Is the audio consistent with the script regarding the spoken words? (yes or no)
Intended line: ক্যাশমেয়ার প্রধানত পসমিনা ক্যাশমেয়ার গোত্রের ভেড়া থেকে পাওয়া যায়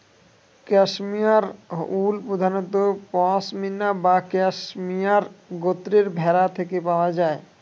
no